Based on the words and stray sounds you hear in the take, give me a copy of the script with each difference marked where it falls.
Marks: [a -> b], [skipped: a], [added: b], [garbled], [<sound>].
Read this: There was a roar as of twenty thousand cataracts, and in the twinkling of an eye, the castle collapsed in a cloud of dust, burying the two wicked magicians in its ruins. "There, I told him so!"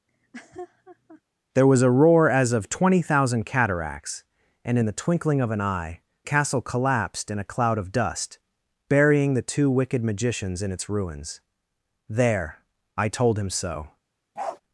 [laugh] There was a roar as of twenty thousand cataracts, and in the twinkling of an eye, [skipped: the] castle collapsed in a cloud of dust, burying the two wicked magicians in its ruins. "There, I told him so!" [bark]